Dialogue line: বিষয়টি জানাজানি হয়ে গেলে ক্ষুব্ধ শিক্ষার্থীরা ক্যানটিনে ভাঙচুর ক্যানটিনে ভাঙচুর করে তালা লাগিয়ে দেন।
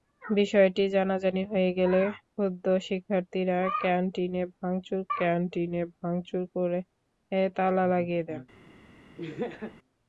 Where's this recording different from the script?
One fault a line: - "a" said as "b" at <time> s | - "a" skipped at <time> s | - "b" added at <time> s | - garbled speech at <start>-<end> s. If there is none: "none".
none